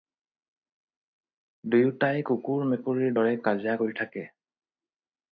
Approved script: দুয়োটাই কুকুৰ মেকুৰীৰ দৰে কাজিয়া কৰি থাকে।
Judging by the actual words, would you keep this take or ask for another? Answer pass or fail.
pass